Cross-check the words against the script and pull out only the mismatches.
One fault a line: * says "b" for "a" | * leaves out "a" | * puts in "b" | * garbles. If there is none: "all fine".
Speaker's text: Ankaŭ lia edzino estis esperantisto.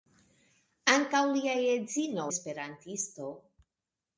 * leaves out "estis"